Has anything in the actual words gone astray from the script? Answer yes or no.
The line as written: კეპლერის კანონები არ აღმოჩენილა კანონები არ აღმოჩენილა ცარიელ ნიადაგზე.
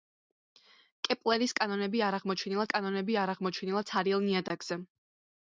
no